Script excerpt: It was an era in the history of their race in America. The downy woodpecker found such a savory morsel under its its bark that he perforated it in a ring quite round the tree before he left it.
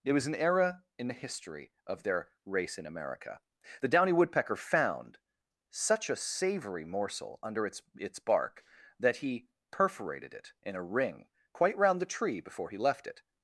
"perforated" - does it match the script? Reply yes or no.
yes